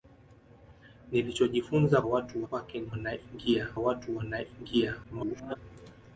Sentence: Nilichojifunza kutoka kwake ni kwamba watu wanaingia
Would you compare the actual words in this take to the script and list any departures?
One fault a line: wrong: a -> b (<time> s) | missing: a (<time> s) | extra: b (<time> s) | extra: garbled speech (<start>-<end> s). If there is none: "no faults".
wrong: kutoka -> watu (2.0 s)
wrong: kwamba -> wanaingia (2.9 s)
extra: garbled speech (5.0-5.6 s)